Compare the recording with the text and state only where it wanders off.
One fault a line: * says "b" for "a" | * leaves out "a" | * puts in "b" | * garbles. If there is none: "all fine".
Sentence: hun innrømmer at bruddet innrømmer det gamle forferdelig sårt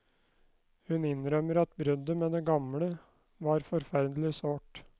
* says "med" for "innrømmer"
* puts in "var"